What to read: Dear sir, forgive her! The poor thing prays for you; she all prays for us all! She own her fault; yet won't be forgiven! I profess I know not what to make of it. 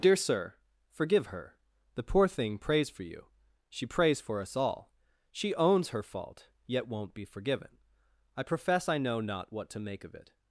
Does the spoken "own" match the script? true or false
false